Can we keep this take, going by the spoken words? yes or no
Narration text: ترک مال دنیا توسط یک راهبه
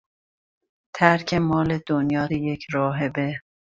no